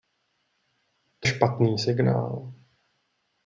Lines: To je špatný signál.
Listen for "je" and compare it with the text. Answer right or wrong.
wrong